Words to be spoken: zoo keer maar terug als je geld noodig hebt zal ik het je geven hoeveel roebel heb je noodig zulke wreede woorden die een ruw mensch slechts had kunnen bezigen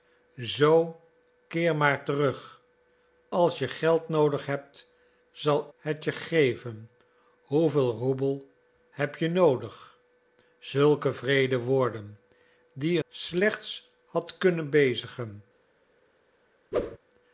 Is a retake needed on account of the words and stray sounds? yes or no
yes